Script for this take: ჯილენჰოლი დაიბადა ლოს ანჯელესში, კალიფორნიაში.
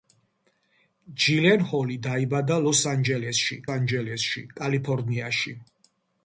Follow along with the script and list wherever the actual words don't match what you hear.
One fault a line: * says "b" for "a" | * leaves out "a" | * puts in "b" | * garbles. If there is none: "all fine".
* puts in "ანჯელესში"